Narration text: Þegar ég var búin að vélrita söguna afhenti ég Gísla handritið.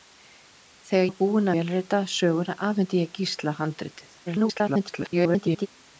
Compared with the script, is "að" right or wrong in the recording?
wrong